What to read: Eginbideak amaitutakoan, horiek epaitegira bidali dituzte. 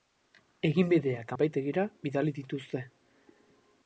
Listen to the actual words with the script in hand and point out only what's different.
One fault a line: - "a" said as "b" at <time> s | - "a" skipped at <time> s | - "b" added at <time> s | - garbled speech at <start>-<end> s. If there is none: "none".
- "amaitutakoan horiek" skipped at 1.3 s